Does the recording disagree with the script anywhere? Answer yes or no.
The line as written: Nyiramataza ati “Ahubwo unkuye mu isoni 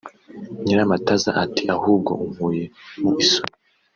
no